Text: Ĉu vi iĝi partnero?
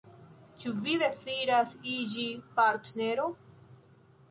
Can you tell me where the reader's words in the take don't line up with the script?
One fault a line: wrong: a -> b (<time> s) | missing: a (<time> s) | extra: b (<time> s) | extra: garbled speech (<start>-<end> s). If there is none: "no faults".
extra: deziras (1.0 s)